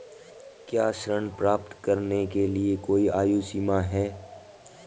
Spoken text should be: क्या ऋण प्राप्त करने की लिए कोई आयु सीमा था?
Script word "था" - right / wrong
wrong